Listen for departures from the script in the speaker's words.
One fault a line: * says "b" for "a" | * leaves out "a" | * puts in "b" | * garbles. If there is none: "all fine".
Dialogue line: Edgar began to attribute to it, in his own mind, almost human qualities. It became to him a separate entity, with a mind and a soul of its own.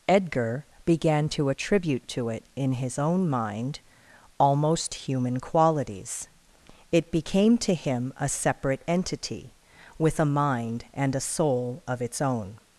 all fine